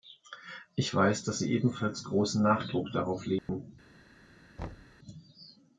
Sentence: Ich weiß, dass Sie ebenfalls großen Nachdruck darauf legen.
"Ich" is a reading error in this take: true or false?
false